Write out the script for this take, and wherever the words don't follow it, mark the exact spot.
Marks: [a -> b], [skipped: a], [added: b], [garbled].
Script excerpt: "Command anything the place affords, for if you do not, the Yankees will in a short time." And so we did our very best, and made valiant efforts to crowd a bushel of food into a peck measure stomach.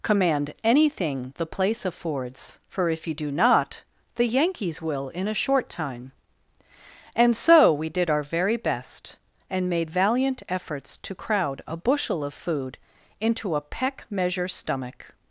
"Command anything the place affords, for if you do not, the Yankees will in a short time." And so we did our very best, and made valiant efforts to crowd a bushel of food into a peck measure stomach.